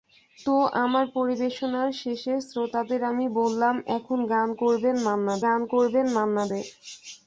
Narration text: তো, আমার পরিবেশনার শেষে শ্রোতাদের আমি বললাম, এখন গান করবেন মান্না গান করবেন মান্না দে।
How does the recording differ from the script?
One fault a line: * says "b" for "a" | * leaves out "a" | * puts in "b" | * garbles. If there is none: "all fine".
all fine